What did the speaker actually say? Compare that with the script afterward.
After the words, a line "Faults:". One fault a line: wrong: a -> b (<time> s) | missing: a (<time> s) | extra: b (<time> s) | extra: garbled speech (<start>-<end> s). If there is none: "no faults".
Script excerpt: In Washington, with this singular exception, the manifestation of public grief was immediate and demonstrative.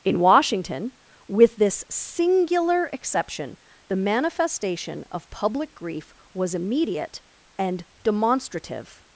In Washington, with this singular exception, the manifestation of public grief was immediate and demonstrative.
Faults:
no faults